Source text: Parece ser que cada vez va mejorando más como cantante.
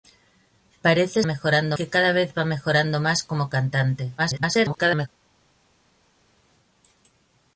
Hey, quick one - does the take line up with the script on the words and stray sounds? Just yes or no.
no